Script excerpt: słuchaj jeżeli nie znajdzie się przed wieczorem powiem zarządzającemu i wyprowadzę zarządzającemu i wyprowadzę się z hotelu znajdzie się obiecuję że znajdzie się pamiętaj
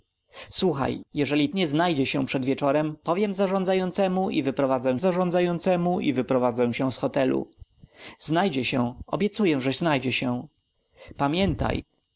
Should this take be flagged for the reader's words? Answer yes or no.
no